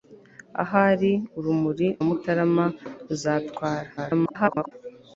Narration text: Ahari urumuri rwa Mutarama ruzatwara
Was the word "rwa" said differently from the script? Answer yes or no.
yes